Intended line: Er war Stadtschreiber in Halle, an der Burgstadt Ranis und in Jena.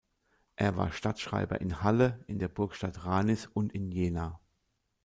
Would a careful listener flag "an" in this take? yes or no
yes